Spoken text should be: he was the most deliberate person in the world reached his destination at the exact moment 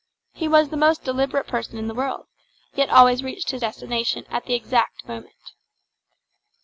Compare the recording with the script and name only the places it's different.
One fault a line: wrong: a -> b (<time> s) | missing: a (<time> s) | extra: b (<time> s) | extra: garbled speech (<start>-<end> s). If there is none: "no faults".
extra: yet always (2.7 s)